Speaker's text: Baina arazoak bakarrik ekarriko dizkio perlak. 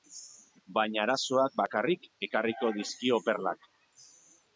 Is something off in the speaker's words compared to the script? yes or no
no